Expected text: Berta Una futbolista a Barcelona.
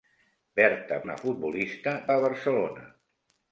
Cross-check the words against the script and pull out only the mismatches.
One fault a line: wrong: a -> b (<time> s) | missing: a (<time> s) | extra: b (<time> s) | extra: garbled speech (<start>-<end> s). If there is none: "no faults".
no faults